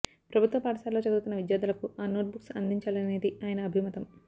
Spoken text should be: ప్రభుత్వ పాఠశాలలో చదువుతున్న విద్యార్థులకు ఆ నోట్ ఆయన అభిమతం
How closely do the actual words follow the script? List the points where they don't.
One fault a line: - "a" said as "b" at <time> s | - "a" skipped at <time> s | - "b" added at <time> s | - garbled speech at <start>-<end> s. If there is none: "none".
- "బుక్స్ అందించాలనేది" added at 2.3 s